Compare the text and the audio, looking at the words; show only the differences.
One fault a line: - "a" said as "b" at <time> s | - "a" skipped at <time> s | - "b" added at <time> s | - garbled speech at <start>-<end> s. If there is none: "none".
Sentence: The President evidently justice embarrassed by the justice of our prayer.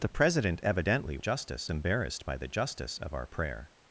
none